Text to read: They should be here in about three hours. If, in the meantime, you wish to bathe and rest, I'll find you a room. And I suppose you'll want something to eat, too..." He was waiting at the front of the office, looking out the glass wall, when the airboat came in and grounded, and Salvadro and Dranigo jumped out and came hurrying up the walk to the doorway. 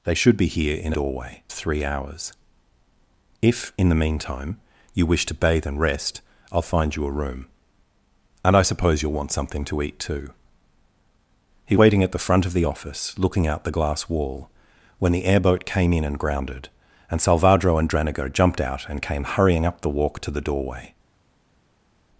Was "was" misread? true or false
true